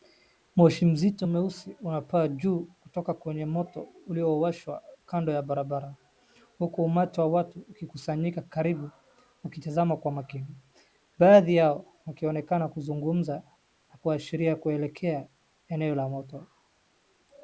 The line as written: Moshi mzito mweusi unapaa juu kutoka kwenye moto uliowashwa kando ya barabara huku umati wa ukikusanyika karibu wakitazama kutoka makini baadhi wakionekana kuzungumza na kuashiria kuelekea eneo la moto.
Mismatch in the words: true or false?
true